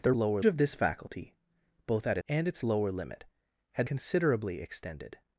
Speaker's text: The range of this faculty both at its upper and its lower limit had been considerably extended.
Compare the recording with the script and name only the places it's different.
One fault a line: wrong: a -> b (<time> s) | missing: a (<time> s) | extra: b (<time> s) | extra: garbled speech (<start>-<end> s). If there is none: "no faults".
wrong: range -> lower (0.1 s)
missing: its upper (2.2 s)
missing: been (3.9 s)